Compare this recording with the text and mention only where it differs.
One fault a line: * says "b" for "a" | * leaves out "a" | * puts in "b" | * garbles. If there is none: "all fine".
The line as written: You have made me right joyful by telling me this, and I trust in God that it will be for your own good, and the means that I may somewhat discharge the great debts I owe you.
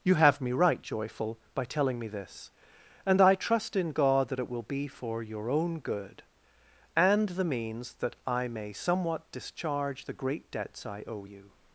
* leaves out "made"